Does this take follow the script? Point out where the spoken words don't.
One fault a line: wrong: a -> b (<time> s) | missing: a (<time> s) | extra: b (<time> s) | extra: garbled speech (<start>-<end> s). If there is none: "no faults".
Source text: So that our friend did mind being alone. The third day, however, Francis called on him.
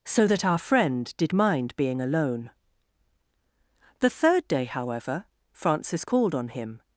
no faults